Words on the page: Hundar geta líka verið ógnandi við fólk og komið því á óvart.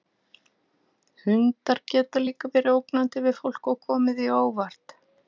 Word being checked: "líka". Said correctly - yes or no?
yes